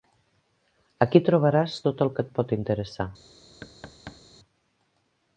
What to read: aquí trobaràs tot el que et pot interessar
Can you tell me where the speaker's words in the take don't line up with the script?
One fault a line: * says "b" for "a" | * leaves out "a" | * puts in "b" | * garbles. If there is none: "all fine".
all fine